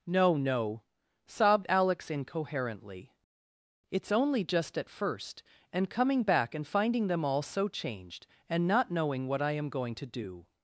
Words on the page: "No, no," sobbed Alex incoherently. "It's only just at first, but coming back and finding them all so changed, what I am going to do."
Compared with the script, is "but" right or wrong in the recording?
wrong